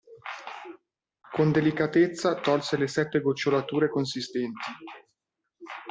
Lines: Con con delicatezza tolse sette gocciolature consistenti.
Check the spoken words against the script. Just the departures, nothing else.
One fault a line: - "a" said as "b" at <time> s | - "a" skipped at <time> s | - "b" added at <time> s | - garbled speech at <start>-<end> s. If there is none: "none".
- "con" skipped at 1.5 s
- "le" added at 2.8 s